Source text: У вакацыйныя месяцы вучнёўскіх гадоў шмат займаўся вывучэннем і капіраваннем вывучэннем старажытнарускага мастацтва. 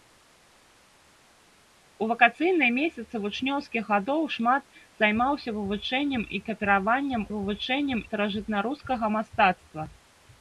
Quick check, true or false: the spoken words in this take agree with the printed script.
true